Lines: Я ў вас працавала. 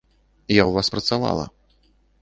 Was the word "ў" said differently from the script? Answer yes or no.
no